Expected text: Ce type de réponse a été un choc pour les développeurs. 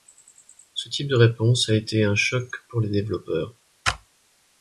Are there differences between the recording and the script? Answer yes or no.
no